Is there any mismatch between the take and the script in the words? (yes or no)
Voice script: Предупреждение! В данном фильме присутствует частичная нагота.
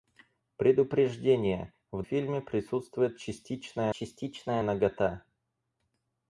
yes